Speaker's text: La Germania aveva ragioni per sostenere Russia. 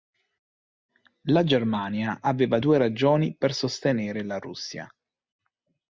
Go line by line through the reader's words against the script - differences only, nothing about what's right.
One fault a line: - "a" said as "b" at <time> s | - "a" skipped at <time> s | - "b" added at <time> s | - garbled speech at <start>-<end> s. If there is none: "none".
- "due" added at 2.6 s
- "la" added at 4.2 s